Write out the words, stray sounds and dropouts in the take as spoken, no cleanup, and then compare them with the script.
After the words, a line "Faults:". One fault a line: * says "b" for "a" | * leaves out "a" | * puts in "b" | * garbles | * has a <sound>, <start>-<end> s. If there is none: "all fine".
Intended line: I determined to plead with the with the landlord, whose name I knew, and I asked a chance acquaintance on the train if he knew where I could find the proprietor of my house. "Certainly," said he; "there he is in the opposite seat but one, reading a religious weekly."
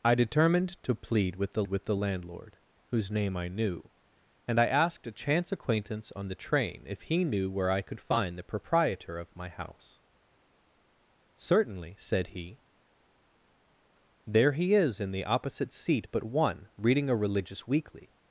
I determined to plead with the with the landlord, whose name I knew, and I asked a chance acquaintance on the train if he knew where I could find the proprietor of my house. "Certainly," said he; "there he is in the opposite seat but one, reading a religious weekly."
Faults:
all fine